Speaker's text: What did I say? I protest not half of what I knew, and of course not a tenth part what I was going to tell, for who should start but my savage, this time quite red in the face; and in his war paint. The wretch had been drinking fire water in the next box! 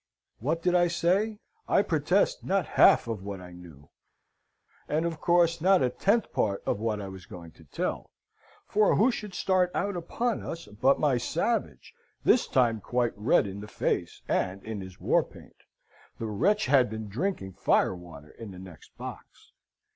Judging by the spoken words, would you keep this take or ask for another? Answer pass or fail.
fail